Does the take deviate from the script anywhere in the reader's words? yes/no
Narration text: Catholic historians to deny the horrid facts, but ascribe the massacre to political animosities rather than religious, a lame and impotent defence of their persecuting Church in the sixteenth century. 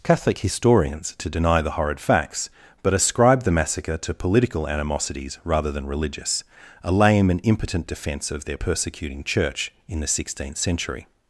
no